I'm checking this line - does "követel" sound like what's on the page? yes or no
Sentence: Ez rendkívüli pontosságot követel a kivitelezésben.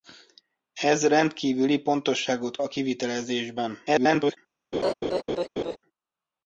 no